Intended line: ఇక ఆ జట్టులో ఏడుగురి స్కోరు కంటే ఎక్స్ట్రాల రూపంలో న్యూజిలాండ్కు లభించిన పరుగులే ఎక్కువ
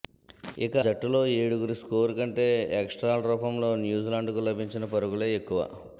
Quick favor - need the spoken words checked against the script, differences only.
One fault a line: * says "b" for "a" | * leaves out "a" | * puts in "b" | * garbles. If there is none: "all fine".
* leaves out "ఆ"